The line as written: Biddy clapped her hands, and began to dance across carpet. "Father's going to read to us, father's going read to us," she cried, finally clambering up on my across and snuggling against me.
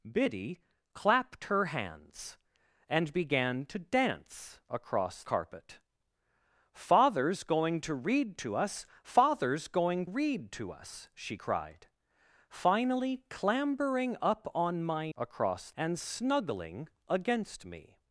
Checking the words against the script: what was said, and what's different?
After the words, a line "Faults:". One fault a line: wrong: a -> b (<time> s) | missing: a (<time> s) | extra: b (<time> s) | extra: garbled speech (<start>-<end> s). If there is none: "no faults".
Biddy clapped her hands, and began to dance across carpet. "Father's going to read to us, father's going read to us," she cried, finally clambering up on my across and snuggling against me.
Faults:
no faults